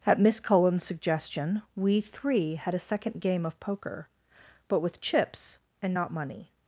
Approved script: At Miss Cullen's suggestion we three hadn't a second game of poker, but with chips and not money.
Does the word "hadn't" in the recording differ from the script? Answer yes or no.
yes